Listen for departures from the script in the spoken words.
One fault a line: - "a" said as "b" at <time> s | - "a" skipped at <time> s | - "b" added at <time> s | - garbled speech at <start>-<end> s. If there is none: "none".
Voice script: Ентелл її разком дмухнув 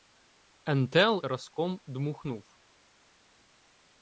- "її" skipped at 1.2 s